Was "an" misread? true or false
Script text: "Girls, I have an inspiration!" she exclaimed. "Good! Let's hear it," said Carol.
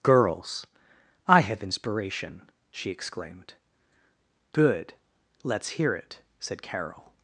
true